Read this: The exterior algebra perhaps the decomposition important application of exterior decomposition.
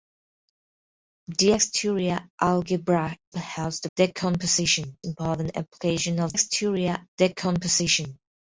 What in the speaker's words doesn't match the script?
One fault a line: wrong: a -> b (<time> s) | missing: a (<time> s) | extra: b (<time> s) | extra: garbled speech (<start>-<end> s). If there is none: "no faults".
no faults